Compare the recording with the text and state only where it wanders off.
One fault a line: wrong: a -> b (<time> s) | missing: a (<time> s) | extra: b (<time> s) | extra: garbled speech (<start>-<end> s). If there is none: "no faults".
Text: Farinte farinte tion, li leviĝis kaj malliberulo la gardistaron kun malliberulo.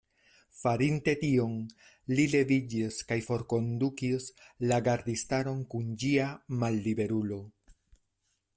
missing: farinte (1.1 s)
wrong: malliberulo -> forkondukis (3.3 s)
extra: ĝia (6.0 s)